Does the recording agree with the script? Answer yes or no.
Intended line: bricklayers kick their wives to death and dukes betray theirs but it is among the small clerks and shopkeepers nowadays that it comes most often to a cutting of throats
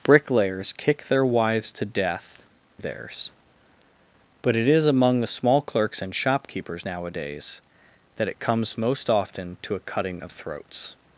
no